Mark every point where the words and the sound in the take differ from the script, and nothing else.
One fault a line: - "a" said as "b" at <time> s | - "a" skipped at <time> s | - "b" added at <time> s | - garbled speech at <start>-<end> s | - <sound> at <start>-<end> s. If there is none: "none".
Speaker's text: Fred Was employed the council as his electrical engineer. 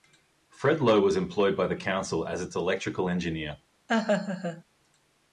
- "Lowe" added at 0.8 s
- "by" added at 1.6 s
- "his" said as "its" at 2.4 s
- laugh at 3.9-4.6 s